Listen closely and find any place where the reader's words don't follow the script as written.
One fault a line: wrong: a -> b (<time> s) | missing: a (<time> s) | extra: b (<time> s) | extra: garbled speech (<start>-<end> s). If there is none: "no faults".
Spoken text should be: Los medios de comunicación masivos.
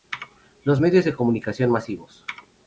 no faults